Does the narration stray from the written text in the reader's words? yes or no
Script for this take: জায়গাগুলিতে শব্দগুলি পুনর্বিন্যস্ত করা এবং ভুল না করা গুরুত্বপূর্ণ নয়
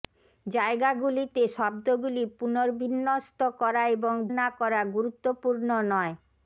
yes